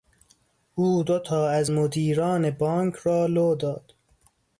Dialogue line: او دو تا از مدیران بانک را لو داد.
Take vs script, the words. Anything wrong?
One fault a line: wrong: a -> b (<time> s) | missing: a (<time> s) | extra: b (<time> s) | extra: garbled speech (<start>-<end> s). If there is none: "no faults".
no faults